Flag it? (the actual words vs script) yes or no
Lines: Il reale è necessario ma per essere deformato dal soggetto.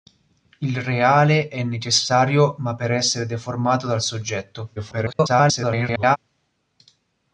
yes